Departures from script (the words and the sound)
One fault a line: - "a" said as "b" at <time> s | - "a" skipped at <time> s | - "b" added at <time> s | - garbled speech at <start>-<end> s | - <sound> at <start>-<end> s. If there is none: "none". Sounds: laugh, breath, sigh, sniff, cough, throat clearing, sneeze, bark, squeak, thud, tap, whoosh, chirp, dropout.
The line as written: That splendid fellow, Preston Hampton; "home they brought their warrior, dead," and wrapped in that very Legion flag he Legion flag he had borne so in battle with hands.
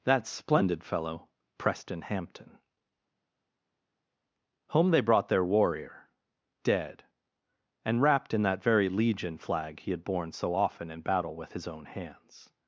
- "Legion flag he" skipped at 9.9 s
- "often" added at 10.5 s
- "his own" added at 11.5 s